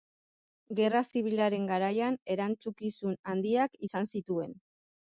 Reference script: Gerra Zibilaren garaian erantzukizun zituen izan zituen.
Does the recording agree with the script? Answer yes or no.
no